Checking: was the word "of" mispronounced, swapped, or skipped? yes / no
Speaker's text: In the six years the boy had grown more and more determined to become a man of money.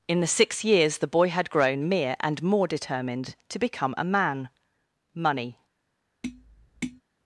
yes